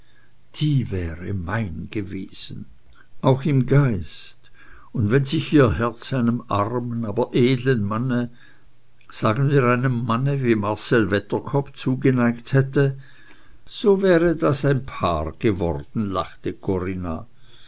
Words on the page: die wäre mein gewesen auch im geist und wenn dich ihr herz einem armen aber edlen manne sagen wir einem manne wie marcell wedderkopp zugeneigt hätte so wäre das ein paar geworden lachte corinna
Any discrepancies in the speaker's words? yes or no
yes